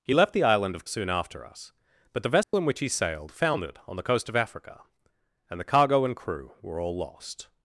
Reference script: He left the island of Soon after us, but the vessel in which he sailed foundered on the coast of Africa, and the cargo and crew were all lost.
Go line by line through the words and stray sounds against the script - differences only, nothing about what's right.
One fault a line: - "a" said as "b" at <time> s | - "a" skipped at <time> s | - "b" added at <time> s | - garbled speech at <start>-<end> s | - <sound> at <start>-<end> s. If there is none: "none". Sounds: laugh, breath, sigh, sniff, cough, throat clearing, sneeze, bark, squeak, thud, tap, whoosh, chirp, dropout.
- dropout at 2.4-2.5 s